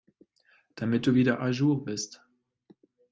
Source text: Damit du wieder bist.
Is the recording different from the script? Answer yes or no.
yes